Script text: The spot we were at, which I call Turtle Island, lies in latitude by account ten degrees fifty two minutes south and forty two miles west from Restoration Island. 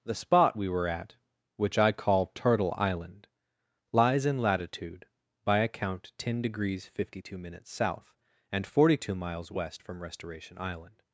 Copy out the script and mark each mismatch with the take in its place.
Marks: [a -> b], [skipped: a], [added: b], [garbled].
The spot we were at, which I call Turtle Island, lies in latitude by account ten degrees fifty two minutes south and forty two miles west from Restoration Island.